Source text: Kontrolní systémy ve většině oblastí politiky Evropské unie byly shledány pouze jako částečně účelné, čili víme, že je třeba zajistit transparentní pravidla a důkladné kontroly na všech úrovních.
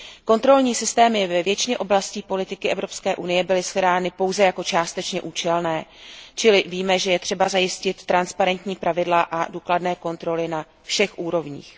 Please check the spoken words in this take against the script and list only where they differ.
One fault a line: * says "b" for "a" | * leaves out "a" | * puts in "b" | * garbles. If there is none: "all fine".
all fine